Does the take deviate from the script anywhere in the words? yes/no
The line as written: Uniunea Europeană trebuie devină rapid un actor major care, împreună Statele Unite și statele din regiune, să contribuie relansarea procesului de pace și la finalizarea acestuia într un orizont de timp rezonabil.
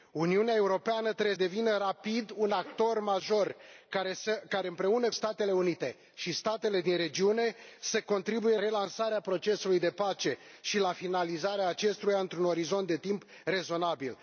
no